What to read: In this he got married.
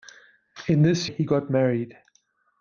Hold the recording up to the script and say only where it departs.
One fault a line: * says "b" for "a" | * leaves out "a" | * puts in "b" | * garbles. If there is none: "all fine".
all fine